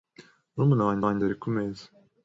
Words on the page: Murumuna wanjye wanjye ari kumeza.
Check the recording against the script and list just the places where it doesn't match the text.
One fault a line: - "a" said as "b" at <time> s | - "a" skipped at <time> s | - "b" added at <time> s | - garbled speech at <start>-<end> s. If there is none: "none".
none